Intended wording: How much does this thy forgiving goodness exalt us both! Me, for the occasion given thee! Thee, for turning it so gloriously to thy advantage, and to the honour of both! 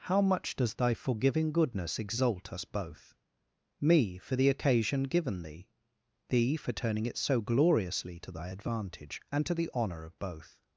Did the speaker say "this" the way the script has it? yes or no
no